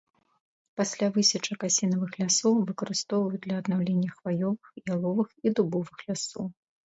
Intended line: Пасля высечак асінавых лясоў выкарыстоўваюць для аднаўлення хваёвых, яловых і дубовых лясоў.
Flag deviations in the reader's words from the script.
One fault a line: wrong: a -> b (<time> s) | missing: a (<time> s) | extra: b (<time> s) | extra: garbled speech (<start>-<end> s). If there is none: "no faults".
no faults